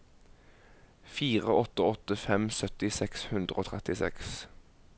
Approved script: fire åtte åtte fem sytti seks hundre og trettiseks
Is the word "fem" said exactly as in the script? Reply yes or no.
yes